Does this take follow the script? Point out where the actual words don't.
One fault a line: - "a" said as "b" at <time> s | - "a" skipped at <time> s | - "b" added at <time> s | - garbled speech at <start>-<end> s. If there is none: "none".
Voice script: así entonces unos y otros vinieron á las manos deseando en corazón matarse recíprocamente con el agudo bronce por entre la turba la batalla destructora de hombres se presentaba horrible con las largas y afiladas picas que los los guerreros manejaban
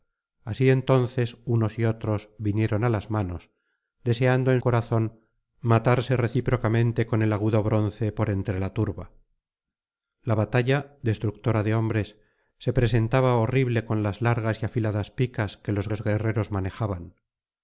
none